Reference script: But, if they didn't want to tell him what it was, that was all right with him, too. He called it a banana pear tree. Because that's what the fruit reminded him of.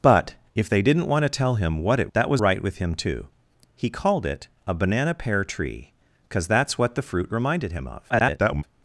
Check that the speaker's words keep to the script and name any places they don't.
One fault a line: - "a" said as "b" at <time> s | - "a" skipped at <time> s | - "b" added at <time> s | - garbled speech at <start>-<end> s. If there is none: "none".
- "was" skipped at 2.1 s
- "all" skipped at 2.4 s
- garbled speech at 8.1-8.6 s